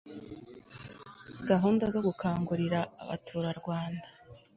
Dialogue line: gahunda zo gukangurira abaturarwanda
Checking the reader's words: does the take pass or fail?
pass